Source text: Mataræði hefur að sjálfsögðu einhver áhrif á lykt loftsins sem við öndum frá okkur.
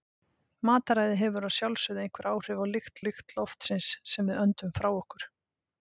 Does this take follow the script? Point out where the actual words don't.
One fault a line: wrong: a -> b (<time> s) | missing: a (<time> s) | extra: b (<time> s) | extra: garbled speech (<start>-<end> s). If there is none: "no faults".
extra: lykt (3.0 s)